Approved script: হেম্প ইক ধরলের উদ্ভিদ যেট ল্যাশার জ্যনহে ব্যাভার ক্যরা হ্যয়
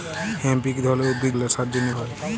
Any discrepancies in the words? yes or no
yes